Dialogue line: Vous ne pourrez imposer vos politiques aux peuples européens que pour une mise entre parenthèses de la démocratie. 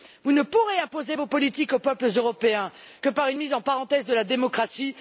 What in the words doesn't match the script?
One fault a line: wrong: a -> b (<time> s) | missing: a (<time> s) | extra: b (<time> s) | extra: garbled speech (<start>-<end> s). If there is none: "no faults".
wrong: pour -> par (3.1 s)